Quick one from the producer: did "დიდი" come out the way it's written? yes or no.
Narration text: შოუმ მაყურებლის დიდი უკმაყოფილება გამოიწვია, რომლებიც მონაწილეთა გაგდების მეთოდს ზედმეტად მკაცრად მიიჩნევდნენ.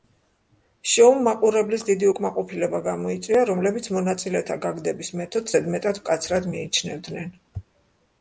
yes